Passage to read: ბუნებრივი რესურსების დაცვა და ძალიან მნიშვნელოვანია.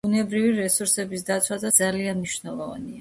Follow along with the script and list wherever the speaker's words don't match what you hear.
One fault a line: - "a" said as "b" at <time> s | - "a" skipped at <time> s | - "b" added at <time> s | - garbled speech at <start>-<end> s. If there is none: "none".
none